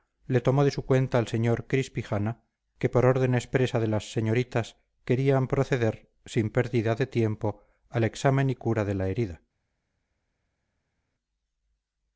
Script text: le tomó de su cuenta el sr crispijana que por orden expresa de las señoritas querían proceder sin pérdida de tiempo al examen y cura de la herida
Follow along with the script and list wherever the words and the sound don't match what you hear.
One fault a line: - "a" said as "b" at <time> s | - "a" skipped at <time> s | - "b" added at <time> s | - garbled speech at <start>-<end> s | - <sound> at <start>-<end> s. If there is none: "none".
none